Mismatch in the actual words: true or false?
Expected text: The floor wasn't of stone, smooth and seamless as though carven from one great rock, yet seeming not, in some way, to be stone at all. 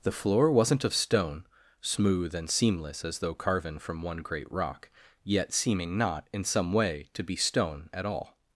false